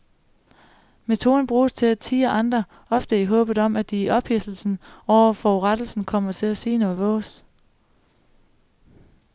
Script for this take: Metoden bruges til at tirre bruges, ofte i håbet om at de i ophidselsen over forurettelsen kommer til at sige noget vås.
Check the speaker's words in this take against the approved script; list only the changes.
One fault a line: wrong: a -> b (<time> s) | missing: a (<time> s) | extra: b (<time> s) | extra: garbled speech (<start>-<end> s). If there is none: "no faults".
wrong: bruges -> andre (2.3 s)